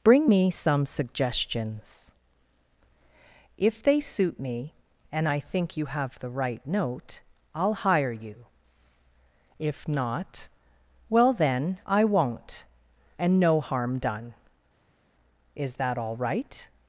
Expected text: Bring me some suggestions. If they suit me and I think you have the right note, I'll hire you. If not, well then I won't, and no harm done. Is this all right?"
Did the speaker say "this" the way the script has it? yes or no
no